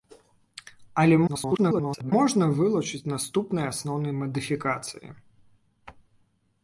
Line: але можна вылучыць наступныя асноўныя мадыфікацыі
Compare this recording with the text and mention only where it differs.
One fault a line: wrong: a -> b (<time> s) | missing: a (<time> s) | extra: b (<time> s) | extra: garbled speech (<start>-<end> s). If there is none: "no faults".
extra: garbled speech (1.3-2.1 s)